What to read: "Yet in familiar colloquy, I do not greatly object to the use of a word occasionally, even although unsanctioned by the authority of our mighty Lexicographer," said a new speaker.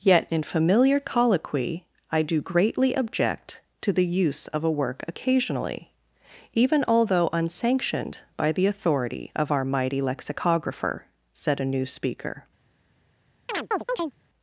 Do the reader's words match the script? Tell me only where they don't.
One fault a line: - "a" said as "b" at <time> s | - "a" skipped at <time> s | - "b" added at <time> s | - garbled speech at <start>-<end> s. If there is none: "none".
- "not" skipped at 2.4 s
- "word" said as "work" at 4.7 s